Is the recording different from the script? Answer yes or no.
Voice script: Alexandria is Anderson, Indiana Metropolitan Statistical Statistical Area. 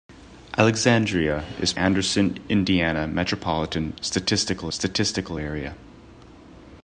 no